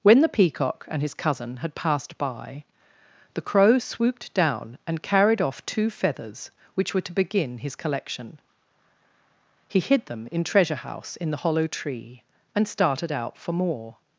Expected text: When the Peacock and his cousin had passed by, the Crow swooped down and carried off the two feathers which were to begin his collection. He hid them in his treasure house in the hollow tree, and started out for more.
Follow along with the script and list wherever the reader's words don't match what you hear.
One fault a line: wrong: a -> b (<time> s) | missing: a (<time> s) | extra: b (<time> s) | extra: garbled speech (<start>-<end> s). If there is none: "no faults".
missing: the (5.7 s)
missing: his (10.4 s)